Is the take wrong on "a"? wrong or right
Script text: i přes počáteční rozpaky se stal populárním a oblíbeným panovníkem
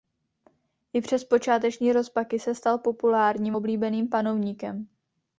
wrong